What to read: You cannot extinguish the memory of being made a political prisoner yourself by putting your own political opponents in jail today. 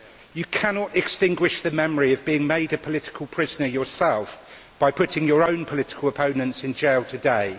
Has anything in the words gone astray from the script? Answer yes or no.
no